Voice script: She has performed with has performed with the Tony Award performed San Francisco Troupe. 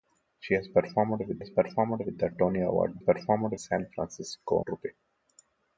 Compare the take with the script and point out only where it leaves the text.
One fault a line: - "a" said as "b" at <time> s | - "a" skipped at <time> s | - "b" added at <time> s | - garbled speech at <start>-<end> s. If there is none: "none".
none